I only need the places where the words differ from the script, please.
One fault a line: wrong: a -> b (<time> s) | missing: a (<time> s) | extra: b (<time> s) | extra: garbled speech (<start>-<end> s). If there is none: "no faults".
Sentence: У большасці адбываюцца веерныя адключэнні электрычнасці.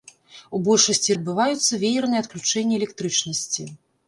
no faults